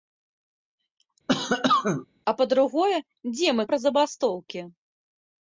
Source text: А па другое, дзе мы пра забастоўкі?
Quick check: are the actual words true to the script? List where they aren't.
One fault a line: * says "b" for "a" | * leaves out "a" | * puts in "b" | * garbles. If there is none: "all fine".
all fine